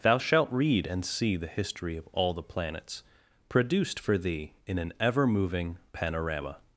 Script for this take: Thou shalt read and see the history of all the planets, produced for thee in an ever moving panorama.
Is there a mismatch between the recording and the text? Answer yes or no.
no